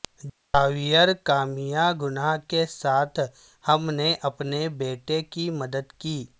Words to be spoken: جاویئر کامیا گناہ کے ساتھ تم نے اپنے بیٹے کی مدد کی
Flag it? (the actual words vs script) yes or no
yes